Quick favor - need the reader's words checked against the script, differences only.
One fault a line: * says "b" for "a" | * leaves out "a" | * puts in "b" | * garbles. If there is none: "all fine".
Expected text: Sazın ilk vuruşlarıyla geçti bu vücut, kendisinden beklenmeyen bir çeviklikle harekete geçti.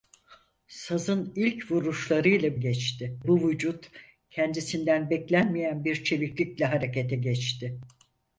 all fine